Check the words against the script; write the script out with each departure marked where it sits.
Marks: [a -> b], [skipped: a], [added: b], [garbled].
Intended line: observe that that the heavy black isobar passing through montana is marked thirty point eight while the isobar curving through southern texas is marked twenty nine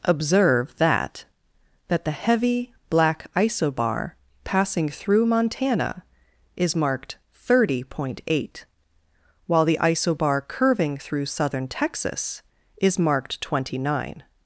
observe that that the heavy black isobar passing through montana is marked thirty point eight while the isobar curving through southern texas is marked twenty nine